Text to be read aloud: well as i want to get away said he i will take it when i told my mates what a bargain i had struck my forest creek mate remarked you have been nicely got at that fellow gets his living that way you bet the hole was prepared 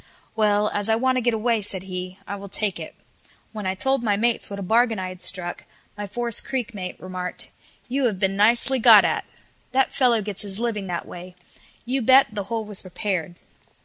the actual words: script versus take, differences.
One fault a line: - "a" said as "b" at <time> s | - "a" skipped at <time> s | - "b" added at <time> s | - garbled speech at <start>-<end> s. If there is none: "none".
none